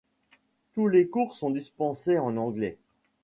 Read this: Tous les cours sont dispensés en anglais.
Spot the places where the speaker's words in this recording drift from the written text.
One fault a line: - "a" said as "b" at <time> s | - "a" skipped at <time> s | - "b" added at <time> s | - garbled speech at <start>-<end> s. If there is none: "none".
none